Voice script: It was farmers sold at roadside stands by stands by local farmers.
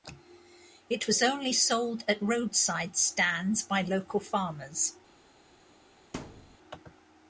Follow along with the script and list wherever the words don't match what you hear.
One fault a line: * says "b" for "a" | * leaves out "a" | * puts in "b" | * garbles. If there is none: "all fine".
* says "only" for "farmers"
* leaves out "stands by"